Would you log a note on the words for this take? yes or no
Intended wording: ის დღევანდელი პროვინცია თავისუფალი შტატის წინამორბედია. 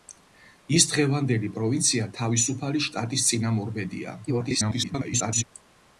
yes